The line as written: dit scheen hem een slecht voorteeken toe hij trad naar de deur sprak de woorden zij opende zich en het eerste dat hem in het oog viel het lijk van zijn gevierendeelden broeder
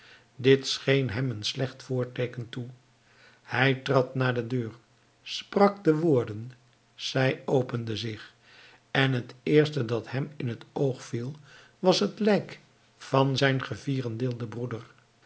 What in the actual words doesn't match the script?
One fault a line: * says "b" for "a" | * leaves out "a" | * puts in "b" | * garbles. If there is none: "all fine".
* puts in "was"